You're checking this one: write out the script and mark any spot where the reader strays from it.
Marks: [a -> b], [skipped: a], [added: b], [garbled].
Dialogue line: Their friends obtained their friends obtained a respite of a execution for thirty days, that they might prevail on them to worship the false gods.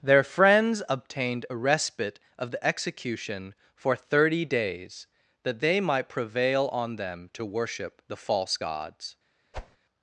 Their friends obtained [skipped: their friends obtained] a respite of [a -> the] execution for thirty days, that they might prevail on them to worship the false gods.